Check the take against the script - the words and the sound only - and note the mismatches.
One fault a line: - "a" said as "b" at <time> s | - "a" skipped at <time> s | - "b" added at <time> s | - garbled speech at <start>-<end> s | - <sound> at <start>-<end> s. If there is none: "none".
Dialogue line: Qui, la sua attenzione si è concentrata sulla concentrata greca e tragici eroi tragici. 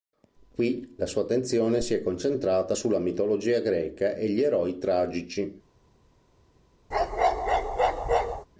- "concentrata" said as "mitologia" at 3.0 s
- "tragici" said as "gli" at 4.3 s
- bark at 6.9-8.5 s